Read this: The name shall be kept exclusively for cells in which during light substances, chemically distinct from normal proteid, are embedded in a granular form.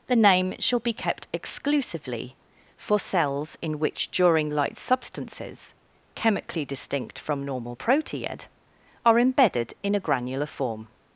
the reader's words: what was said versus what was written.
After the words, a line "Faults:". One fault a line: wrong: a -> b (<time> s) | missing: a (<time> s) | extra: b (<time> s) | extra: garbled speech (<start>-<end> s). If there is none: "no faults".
The name shall be kept exclusively for cells in which during light substances, chemically distinct from normal proteid, are embedded in a granular form.
Faults:
no faults